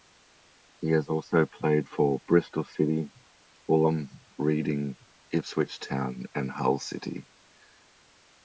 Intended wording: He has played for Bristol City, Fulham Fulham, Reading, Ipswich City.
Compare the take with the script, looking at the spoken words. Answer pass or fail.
fail